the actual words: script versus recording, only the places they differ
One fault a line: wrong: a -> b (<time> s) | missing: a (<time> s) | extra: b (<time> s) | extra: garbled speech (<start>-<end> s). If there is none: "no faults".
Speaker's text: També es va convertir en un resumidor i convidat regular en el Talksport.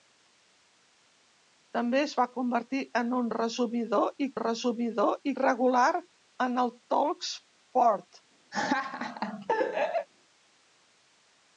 wrong: convidat -> resumidor (4.4 s)